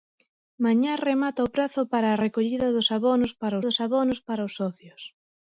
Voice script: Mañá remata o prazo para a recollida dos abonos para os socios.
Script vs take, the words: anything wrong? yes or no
yes